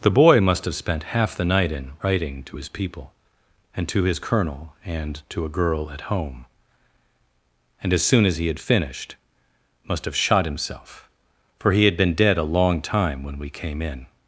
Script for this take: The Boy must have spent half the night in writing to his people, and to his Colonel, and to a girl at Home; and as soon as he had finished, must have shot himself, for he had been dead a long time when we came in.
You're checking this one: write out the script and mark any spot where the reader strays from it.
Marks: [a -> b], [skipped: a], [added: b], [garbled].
The Boy must have spent half the night in writing to his people, and to his Colonel, and to a girl at Home; and as soon as he had finished, must have shot himself, for he had been dead a long time when we came in.